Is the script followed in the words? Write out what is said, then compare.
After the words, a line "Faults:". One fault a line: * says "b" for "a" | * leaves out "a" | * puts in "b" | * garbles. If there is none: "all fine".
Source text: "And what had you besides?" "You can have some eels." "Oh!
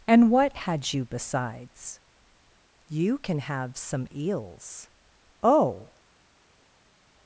"And what had you besides?" "You can have some eels." "Oh!
Faults:
all fine